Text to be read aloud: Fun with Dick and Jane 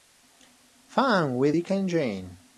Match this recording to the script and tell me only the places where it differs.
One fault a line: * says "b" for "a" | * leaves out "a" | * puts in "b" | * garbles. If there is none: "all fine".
all fine